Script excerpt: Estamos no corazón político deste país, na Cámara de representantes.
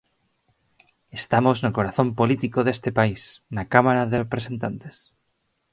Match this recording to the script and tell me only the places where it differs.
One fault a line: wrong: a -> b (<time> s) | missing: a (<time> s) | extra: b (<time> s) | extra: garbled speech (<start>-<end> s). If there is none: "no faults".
no faults